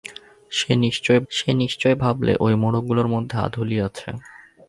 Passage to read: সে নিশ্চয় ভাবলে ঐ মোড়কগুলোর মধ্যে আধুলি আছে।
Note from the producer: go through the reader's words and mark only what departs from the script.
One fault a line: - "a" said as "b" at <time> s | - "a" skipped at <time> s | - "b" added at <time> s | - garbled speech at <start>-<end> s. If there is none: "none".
- "সে নিশ্চয়" added at 1.3 s